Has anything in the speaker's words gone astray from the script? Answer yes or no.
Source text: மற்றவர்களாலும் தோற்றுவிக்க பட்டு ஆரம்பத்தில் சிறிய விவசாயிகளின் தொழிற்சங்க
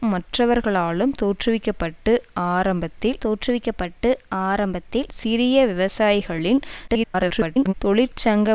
yes